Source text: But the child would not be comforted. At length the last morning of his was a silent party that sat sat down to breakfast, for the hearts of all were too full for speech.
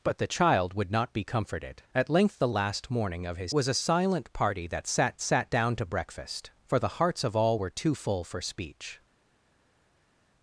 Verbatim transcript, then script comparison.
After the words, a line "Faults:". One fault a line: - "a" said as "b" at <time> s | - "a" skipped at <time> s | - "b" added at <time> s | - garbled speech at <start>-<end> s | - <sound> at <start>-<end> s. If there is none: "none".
But the child would not be comforted. At length the last morning of his was a silent party that sat sat down to breakfast, for the hearts of all were too full for speech.
Faults:
none